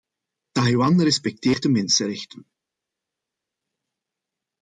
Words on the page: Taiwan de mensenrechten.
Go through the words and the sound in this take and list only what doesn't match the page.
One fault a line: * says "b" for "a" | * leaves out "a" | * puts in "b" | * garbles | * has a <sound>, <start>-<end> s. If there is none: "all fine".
* puts in "respecteert"